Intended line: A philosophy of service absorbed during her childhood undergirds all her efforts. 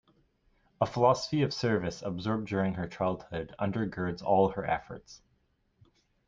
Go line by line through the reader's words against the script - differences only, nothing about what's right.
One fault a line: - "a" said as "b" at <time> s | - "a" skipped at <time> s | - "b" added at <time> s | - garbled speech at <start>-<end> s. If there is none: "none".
none